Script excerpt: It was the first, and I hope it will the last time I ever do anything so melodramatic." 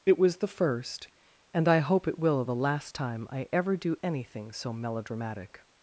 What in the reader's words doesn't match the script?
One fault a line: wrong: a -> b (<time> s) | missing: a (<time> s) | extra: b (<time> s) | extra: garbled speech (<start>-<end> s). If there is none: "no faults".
no faults